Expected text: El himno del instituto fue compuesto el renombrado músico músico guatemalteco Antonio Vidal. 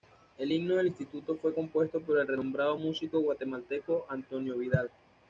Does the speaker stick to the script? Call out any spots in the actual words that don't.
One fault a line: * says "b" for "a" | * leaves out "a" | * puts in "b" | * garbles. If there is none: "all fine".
* puts in "por"
* leaves out "músico"